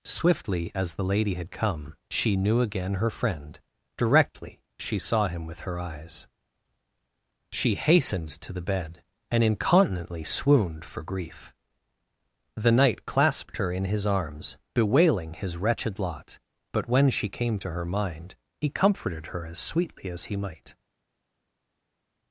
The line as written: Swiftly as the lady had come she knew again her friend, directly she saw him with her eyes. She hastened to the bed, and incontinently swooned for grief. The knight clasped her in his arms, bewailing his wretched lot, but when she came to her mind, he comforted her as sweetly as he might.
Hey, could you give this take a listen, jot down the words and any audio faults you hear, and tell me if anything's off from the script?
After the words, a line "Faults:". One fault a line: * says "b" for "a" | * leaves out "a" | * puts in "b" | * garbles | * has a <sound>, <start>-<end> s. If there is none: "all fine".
Swiftly as the lady had come she knew again her friend, directly she saw him with her eyes. She hastened to the bed, and incontinently swooned for grief. The knight clasped her in his arms, bewailing his wretched lot, but when she came to her mind, he comforted her as sweetly as he might.
Faults:
all fine